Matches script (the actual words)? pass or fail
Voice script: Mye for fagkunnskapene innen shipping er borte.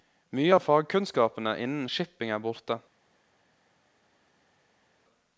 fail